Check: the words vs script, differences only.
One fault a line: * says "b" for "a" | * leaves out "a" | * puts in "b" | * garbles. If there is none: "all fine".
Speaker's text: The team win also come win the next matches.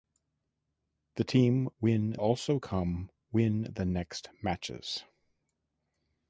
all fine